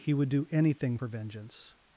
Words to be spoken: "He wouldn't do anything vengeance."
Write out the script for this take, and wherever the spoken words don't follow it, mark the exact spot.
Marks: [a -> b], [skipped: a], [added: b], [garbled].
"He [wouldn't -> would] do anything [added: for] vengeance."